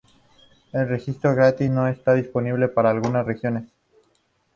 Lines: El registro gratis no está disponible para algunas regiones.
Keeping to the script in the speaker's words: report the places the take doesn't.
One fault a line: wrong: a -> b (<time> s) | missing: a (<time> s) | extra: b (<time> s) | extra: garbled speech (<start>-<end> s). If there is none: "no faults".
no faults